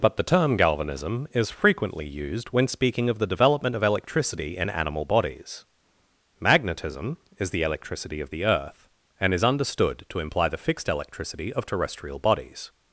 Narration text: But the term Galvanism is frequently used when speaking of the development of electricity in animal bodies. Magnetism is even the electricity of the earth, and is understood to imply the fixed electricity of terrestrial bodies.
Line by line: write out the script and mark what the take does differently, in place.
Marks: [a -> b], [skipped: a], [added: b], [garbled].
But the term Galvanism is frequently used when speaking of the development of electricity in animal bodies. Magnetism is [skipped: even] the electricity of the earth, and is understood to imply the fixed electricity of terrestrial bodies.